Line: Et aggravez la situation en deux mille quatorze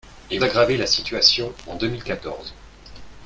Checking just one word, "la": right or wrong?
right